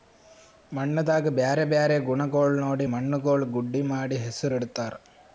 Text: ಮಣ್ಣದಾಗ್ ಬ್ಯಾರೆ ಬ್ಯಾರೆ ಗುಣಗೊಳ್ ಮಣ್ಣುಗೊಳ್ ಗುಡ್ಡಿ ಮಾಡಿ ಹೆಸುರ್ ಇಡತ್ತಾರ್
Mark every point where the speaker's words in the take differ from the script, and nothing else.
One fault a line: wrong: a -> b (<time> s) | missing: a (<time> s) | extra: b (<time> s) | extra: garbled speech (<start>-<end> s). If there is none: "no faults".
extra: ನೋಡಿ (2.6 s)